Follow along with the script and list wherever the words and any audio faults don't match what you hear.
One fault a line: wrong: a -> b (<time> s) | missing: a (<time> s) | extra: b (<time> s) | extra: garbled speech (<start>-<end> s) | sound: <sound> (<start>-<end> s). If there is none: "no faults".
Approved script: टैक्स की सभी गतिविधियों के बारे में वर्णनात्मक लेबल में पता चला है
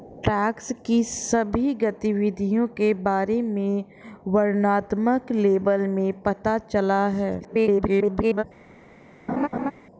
extra: garbled speech (7.4-8.4 s)
sound: laugh (9.3-9.7 s)